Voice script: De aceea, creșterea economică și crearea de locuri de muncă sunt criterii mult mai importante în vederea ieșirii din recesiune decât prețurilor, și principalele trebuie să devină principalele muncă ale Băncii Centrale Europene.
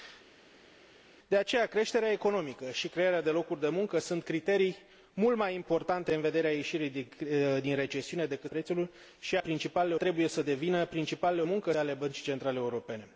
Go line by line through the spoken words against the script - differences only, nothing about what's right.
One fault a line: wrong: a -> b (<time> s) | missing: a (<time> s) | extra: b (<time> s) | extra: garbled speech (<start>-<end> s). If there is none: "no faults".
no faults